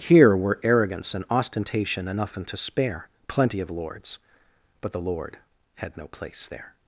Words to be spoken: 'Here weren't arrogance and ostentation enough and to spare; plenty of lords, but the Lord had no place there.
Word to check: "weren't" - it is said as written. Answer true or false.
false